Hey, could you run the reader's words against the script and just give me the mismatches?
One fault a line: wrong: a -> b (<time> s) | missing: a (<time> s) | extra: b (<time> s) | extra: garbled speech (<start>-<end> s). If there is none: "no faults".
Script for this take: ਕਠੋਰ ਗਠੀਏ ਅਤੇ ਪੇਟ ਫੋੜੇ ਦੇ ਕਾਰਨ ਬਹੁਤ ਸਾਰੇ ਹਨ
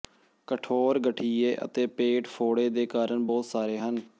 no faults